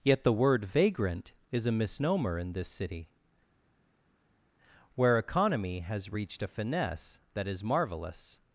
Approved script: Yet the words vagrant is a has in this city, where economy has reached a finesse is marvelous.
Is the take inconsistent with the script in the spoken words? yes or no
yes